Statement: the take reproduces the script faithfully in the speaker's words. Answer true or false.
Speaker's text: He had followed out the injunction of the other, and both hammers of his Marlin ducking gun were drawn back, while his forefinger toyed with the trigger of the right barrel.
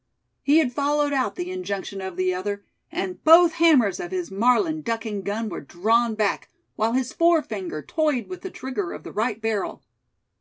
true